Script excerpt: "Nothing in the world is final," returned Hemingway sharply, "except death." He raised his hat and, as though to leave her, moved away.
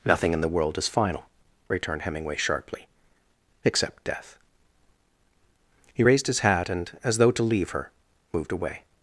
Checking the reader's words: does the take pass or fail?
pass